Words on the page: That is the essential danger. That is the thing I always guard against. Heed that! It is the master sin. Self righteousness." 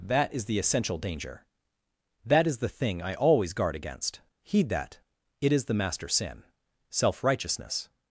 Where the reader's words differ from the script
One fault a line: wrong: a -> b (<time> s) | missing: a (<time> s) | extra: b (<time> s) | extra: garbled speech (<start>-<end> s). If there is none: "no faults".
no faults